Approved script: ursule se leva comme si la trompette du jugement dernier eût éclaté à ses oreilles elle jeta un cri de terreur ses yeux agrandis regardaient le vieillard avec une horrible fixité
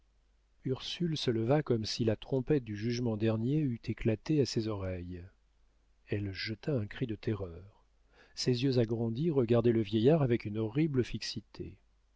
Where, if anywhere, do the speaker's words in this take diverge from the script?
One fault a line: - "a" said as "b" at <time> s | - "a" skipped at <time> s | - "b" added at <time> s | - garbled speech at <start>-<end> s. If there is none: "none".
none